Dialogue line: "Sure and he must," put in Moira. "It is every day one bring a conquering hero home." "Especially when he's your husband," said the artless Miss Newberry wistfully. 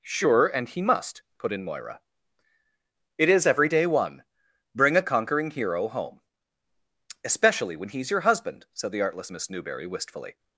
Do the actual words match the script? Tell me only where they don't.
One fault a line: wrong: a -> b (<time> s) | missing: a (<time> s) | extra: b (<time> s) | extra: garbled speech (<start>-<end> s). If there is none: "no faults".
no faults